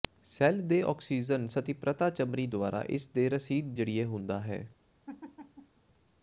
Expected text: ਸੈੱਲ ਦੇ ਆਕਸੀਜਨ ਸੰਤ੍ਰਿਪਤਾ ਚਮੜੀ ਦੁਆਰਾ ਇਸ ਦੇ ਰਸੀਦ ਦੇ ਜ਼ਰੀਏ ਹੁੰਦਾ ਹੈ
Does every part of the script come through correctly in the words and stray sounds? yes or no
no